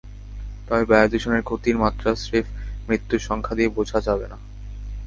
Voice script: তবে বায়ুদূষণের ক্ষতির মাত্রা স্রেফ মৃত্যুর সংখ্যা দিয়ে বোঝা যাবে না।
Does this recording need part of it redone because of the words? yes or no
no